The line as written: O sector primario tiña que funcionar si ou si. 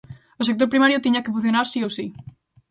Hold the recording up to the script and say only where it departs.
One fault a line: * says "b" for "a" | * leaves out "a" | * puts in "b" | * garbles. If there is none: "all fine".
all fine